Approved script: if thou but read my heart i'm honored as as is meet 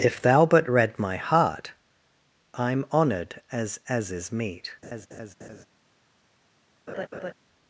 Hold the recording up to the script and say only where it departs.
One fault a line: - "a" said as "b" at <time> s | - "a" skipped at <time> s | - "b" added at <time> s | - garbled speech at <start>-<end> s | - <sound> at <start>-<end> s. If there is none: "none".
- laugh at 4.8-5.7 s
- laugh at 6.9-7.3 s